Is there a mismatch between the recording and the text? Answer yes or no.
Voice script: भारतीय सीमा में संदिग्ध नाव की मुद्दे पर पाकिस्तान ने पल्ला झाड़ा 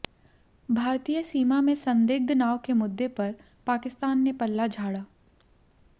yes